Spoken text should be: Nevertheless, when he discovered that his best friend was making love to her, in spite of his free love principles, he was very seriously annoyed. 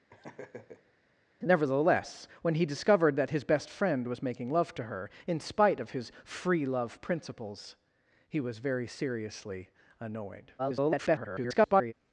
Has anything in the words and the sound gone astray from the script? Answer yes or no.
yes